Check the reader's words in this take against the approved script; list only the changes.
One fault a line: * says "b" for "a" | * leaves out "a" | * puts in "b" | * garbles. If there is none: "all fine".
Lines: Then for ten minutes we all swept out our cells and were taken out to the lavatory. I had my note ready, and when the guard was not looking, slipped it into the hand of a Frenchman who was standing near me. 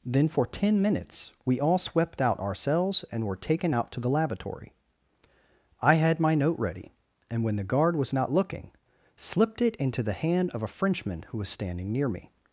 all fine